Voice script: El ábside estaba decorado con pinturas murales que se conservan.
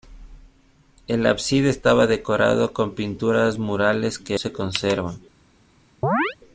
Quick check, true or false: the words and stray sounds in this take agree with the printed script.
false